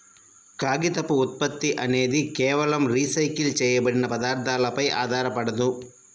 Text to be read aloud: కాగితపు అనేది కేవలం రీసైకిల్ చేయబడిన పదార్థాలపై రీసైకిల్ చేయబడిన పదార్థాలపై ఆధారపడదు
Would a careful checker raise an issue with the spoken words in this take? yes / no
yes